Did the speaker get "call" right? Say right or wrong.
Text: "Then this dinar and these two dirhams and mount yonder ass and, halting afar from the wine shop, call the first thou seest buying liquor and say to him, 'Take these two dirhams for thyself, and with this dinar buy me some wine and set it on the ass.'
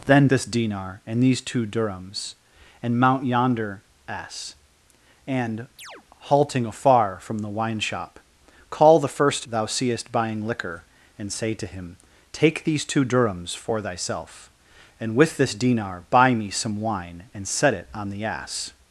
right